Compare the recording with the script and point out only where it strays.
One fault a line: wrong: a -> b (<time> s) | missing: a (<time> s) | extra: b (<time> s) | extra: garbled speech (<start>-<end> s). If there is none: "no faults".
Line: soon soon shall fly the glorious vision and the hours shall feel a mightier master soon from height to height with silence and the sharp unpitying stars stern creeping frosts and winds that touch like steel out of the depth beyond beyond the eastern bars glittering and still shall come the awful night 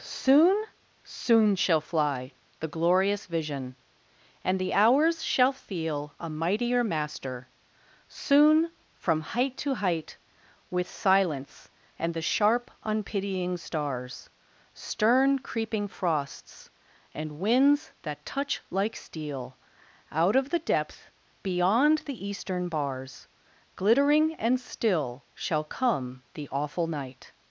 missing: beyond (22.0 s)